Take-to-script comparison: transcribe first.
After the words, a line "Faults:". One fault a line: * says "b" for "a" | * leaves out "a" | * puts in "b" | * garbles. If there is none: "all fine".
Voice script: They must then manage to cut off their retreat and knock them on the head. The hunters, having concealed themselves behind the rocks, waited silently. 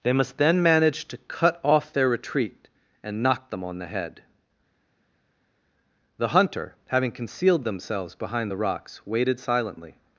They must then manage to cut off their retreat and knock them on the head. The hunter, having concealed themselves behind the rocks, waited silently.
Faults:
* says "hunter" for "hunters"